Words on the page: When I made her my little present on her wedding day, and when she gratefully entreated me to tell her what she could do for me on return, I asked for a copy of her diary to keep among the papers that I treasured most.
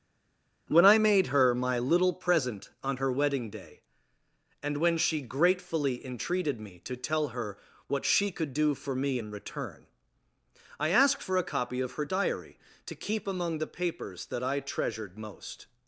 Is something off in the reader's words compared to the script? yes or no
yes